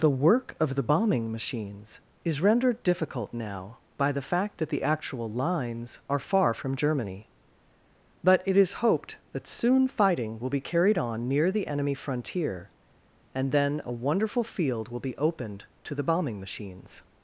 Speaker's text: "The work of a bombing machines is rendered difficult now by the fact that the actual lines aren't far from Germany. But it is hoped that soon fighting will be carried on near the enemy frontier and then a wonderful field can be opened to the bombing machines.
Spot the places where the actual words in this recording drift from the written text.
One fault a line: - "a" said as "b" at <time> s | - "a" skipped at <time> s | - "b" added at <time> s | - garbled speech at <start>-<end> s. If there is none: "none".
- "a" said as "the" at 0.7 s
- "aren't" said as "are" at 6.1 s
- "can" said as "will" at 14.9 s